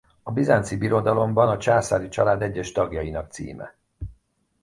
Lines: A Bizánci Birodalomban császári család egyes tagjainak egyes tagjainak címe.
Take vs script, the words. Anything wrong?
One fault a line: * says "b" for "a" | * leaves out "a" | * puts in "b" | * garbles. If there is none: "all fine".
* puts in "a"
* leaves out "egyes tagjainak"